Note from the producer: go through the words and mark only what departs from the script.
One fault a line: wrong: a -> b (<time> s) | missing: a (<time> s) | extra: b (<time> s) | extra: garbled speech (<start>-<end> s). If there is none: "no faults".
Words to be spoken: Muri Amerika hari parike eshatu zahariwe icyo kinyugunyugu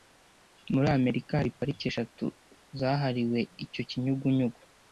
no faults